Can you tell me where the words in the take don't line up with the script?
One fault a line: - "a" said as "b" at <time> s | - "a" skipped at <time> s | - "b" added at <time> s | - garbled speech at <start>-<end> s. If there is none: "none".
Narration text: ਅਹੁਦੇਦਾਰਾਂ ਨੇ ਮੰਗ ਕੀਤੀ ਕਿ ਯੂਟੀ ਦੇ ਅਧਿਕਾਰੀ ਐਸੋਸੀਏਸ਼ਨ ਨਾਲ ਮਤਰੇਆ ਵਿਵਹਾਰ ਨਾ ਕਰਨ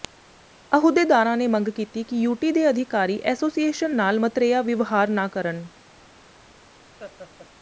none